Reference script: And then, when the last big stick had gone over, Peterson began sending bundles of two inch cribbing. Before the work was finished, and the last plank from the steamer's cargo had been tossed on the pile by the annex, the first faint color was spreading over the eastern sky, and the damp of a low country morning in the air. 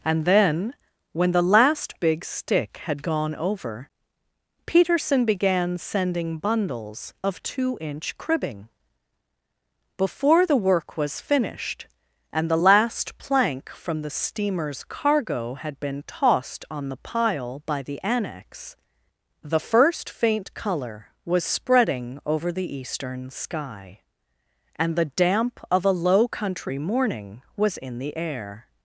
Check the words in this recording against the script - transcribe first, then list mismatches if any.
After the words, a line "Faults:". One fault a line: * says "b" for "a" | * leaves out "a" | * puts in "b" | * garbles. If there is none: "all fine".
And then, when the last big stick had gone over, Peterson began sending bundles of two inch cribbing. Before the work was finished, and the last plank from the steamer's cargo had been tossed on the pile by the annex, the first faint color was spreading over the eastern sky, and the damp of a low country morning was in the air.
Faults:
* puts in "was"